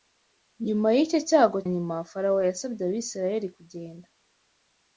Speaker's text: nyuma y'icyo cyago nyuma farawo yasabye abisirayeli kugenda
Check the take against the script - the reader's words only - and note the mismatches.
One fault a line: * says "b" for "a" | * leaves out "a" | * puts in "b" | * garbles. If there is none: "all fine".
all fine